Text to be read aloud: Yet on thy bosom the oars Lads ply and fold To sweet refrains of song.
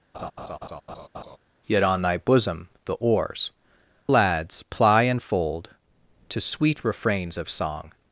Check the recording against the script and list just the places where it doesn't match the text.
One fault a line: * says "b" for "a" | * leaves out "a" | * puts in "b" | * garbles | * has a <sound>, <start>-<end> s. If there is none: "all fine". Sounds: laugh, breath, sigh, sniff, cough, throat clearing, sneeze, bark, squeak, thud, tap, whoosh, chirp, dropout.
* has a laugh, 0.1-1.4 s